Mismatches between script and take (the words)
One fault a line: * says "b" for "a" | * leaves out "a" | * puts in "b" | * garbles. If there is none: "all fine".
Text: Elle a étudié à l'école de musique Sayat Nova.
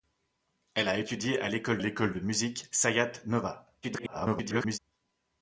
* puts in "l'école"
* garbles